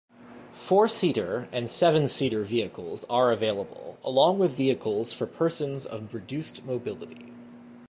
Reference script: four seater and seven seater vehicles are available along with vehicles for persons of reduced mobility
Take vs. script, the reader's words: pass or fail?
pass